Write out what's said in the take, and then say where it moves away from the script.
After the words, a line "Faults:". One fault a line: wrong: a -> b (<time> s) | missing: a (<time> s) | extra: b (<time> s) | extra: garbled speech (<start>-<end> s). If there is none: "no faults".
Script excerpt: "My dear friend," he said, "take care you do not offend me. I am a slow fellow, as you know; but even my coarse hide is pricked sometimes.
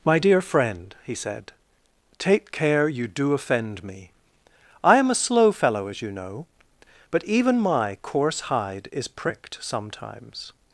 "My dear friend," he said, "take care you do offend me. I am a slow fellow, as you know; but even my coarse hide is pricked sometimes.
Faults:
missing: not (3.3 s)